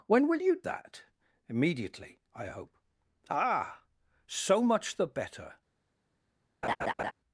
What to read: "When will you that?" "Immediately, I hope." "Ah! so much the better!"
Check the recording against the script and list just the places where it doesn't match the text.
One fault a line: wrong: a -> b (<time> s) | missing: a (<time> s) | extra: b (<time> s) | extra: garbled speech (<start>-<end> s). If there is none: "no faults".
no faults